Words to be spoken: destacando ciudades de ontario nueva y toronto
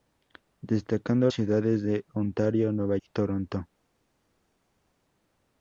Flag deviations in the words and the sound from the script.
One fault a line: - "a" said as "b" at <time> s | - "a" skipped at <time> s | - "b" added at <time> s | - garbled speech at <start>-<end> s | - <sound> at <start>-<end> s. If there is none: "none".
none